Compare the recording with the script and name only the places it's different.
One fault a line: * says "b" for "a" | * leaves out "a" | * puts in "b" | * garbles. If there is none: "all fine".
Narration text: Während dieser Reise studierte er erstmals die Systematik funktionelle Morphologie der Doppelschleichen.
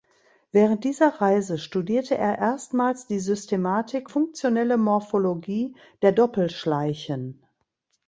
all fine